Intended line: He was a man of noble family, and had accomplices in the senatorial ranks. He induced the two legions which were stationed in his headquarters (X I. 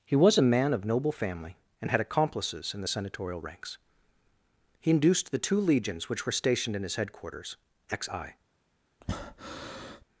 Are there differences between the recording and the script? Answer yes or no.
no